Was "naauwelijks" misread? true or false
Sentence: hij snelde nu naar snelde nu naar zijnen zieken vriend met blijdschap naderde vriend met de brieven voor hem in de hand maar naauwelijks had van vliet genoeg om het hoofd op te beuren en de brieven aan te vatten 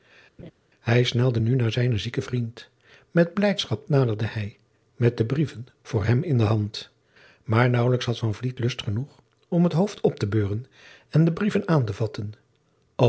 false